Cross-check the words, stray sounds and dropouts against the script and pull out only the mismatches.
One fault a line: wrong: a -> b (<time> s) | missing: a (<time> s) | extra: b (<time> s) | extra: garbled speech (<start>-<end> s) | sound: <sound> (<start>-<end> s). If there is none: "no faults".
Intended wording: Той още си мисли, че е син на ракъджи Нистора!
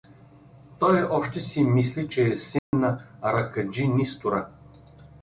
sound: dropout (2.6-2.7 s)